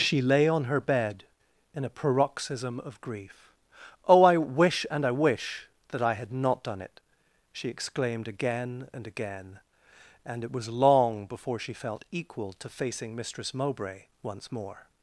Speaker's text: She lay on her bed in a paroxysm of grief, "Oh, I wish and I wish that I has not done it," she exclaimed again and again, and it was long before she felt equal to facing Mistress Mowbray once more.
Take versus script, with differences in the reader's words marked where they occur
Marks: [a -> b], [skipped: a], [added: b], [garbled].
She lay on her bed in a paroxysm of grief, "Oh, I wish and I wish that I [has -> had] not done it," she exclaimed again and again, and it was long before she felt equal to facing Mistress Mowbray once more.